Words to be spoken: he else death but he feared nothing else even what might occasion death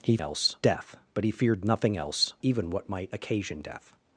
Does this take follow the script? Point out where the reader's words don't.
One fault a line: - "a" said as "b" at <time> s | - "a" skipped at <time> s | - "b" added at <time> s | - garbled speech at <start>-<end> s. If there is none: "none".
none